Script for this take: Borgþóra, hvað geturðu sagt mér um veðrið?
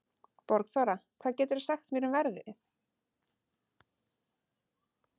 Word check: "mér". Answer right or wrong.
right